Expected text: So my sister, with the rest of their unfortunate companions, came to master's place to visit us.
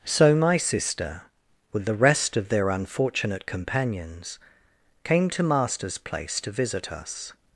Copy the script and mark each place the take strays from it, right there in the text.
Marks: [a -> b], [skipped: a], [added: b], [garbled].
So my sister, with the rest of their unfortunate companions, came to master's place to visit us.